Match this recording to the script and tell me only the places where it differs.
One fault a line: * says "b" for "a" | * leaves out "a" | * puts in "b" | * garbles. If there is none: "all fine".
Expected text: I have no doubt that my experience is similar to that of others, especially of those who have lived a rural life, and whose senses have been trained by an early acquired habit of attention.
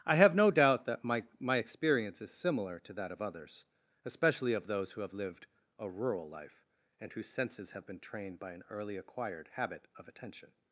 * puts in "my"